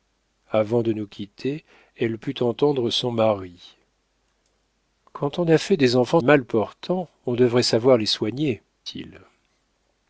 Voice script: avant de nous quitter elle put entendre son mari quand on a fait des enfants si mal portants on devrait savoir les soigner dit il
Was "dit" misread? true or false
true